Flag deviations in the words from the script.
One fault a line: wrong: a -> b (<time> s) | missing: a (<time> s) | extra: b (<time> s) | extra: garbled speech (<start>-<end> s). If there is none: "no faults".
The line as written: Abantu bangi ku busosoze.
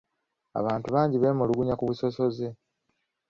extra: beemulugunya (1.2 s)